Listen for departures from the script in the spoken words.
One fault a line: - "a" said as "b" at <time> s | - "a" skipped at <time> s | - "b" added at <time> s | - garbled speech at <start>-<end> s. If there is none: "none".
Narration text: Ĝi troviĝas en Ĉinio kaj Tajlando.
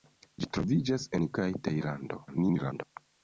- "Ĉinio" skipped at 1.3 s
- garbled speech at 2.3-2.8 s